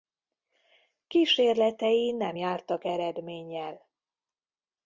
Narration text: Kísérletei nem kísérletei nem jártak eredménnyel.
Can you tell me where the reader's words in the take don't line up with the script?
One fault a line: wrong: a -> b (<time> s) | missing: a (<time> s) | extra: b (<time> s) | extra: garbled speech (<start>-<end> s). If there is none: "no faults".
missing: kísérletei nem (2.4 s)